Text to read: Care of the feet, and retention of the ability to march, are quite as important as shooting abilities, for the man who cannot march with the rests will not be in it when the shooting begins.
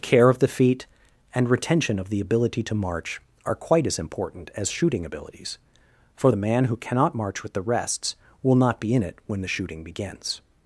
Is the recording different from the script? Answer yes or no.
no